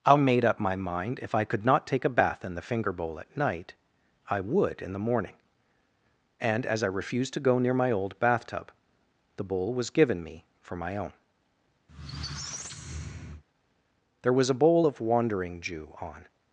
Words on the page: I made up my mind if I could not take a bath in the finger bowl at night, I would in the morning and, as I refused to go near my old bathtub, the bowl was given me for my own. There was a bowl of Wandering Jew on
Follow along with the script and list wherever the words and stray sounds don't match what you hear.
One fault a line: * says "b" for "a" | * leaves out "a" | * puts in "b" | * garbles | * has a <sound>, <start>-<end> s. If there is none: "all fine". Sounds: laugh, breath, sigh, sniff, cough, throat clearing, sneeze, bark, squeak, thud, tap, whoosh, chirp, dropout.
* has a squeak, 11.9-13.4 s